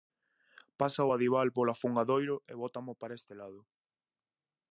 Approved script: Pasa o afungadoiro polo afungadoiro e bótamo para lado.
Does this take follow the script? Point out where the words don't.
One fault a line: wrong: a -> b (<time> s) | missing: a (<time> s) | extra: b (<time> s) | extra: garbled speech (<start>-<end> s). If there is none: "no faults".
wrong: afungadoiro -> adival (1.2 s)
extra: este (3.2 s)